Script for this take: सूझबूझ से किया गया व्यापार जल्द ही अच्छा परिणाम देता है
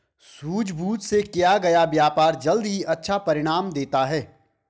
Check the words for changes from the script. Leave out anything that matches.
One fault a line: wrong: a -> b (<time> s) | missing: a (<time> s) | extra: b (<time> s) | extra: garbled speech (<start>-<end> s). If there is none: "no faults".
no faults